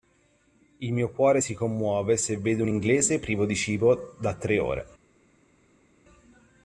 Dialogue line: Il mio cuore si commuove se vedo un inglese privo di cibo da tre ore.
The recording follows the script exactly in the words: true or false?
true